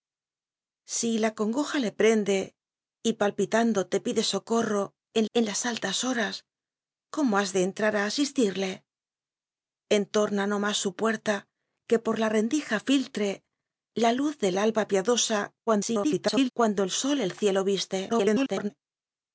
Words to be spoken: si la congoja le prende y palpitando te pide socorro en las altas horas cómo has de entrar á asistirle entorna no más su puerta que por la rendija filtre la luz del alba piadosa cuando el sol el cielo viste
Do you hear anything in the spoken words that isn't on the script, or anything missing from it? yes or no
yes